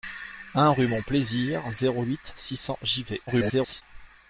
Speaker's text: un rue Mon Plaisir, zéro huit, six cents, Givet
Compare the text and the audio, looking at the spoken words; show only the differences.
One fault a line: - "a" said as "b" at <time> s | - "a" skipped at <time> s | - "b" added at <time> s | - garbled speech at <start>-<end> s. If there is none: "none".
- garbled speech at 3.3-3.8 s